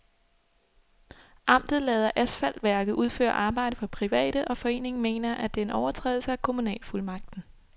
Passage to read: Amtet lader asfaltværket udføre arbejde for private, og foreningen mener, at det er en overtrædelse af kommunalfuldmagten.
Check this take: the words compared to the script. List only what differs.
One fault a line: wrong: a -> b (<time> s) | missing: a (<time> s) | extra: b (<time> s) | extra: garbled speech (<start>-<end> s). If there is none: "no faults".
no faults